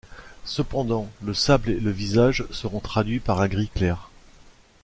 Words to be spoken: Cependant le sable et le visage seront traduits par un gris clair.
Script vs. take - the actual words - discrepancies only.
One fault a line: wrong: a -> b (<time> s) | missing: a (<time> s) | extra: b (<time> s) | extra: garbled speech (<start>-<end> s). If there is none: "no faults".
no faults